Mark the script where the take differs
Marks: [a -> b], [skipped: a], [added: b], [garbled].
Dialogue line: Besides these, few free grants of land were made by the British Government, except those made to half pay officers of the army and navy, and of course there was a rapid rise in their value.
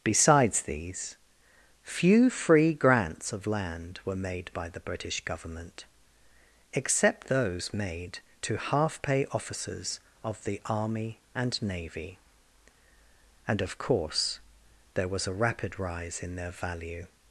Besides these, few free grants of land were made by the British Government, except those made to half pay officers of the army and navy, and of course there was a rapid rise in their value.